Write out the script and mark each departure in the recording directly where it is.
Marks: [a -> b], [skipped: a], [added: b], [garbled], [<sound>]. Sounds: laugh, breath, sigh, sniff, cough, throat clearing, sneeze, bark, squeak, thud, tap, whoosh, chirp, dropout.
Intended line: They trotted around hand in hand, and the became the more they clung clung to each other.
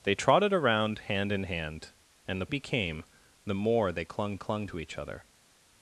They trotted around hand in hand, and the became the more they clung clung to each other.